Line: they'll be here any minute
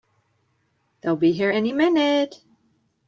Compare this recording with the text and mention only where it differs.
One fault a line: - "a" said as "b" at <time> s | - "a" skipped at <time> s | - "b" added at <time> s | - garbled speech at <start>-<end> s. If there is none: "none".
none